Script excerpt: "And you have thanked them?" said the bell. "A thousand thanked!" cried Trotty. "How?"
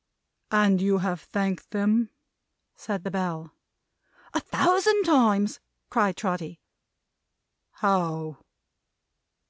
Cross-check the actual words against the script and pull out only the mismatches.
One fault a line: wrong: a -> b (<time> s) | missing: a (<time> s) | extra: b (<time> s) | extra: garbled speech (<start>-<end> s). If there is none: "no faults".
wrong: thanked -> times (5.0 s)